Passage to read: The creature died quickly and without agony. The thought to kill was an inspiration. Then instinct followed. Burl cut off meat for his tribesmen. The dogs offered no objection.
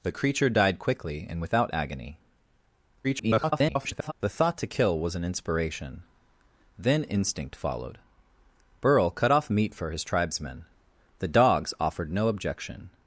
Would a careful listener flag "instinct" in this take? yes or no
no